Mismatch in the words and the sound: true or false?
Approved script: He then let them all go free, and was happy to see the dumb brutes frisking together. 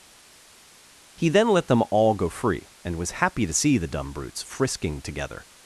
false